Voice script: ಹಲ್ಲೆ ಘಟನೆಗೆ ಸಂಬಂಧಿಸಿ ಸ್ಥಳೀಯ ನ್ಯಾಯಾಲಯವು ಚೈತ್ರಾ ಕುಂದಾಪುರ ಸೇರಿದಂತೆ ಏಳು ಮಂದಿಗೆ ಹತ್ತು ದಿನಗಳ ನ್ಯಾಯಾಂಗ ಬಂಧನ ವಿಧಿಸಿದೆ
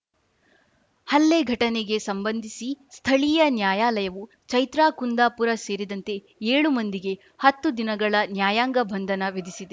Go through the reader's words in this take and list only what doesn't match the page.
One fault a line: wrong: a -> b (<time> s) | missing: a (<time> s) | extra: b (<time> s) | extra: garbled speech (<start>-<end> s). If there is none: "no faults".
no faults